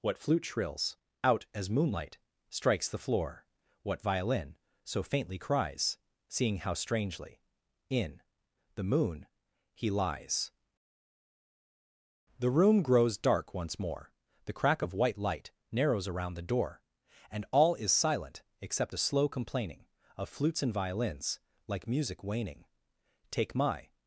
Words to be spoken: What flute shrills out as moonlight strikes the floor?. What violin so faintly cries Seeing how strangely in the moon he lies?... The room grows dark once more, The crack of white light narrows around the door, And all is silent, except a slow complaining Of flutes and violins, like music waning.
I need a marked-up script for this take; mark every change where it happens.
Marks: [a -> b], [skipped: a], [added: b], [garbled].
What flute shrills out as moonlight strikes the floor?. What violin so faintly cries Seeing how strangely in the moon he lies?... The room grows dark once more, The crack of white light narrows around the door, And all is silent, except a slow complaining Of flutes and violins, like music waning. [added: Take my]